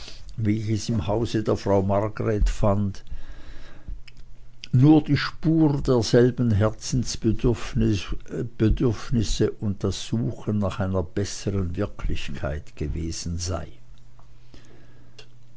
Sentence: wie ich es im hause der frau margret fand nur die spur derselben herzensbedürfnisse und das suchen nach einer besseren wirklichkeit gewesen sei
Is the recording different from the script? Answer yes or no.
no